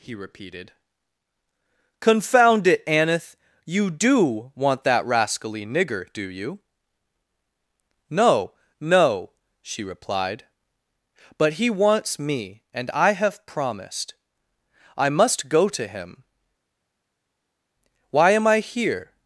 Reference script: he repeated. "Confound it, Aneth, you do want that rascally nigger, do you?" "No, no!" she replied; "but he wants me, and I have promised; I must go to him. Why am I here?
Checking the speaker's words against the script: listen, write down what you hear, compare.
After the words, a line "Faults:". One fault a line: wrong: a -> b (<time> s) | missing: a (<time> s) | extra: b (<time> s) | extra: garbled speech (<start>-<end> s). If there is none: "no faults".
he repeated. "Confound it, Aneth, you do want that rascally nigger, do you?" "No, no!" she replied; "but he wants me, and I have promised; I must go to him. Why am I here?
Faults:
no faults